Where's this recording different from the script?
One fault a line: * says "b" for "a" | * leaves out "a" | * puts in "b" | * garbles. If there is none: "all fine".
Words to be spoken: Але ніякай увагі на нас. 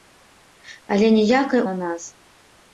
* leaves out "увагі"